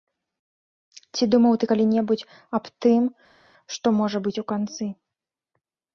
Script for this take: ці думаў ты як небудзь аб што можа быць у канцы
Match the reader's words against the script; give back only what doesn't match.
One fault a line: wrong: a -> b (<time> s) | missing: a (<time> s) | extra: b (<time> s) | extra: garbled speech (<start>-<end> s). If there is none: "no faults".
wrong: як -> калі (1.7 s)
extra: тым (2.9 s)